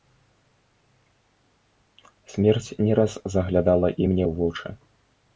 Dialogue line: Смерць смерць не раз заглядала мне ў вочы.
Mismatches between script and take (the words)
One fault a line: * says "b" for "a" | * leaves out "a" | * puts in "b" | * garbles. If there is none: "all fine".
* leaves out "смерць"
* puts in "і"